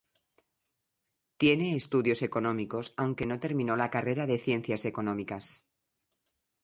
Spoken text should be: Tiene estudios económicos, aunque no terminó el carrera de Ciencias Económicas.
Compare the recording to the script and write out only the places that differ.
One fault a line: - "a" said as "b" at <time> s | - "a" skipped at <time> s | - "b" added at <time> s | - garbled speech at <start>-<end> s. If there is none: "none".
- "el" said as "la" at 3.8 s